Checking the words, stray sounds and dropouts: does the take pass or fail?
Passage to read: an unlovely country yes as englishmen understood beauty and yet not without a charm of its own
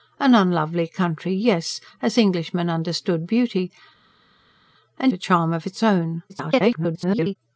fail